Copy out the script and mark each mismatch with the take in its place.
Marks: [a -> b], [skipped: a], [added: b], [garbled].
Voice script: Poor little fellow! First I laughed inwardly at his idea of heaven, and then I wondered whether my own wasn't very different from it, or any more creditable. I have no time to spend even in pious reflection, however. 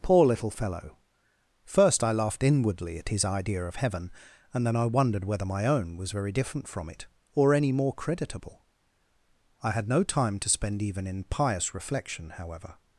Poor little fellow! First I laughed inwardly at his idea of heaven, and then I wondered whether my own [wasn't -> was] very different from it, or any more creditable. I [have -> had] no time to spend even in pious reflection, however.